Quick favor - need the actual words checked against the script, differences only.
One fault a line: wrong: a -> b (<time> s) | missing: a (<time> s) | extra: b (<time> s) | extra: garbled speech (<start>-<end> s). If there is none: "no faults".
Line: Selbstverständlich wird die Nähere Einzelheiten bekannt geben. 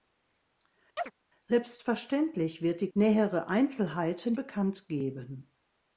no faults